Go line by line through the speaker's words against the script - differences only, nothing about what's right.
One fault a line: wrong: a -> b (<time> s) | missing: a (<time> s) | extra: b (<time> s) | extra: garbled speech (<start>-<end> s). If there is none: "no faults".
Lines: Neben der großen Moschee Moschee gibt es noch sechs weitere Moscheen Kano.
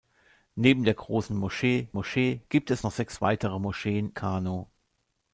no faults